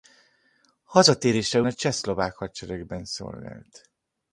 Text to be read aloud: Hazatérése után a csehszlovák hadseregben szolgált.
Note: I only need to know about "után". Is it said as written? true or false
false